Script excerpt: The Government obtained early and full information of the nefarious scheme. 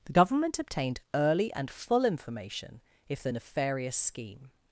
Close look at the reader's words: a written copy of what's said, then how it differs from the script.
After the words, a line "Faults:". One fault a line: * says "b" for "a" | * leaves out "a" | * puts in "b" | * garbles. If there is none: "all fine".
The Government obtained early and full information if the nefarious scheme.
Faults:
* says "if" for "of"